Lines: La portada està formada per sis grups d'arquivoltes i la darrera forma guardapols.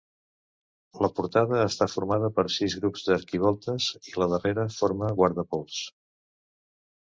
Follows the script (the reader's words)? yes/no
yes